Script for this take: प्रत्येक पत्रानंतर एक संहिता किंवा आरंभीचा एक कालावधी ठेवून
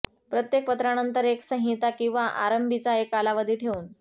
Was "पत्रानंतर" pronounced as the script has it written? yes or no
yes